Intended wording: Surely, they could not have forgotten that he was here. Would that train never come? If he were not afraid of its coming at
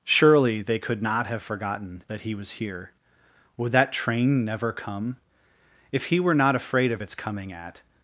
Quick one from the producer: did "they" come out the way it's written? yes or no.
yes